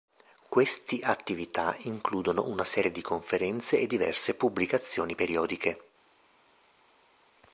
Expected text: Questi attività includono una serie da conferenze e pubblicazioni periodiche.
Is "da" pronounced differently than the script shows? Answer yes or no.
yes